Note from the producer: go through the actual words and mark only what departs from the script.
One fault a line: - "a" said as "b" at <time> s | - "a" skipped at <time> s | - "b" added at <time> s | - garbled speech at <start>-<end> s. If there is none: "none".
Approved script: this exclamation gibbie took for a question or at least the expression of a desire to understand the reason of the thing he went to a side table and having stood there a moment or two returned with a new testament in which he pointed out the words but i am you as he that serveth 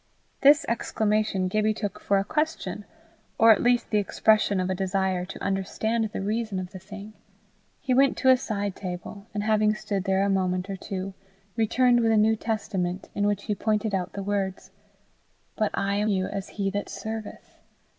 none